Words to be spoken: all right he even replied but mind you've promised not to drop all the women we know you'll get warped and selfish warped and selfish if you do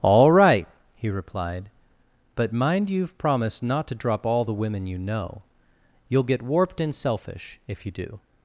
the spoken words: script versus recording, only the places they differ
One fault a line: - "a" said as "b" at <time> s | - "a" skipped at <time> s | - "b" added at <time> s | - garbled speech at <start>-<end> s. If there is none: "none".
- "even" skipped at 1.1 s
- "we" said as "you" at 4.9 s
- "warped and selfish" skipped at 7.6 s